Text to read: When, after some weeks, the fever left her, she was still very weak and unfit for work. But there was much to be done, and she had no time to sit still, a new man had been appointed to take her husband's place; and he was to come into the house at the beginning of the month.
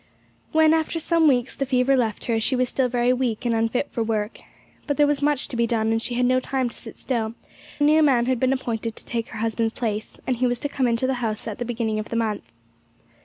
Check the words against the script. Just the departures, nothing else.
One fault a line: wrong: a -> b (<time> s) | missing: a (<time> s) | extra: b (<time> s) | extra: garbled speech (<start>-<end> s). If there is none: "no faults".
no faults